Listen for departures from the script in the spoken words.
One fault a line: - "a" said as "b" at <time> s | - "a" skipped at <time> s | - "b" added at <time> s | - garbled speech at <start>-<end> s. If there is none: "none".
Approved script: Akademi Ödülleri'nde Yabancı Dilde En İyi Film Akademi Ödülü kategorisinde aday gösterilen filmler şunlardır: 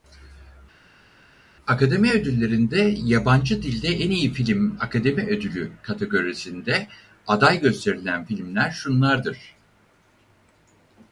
none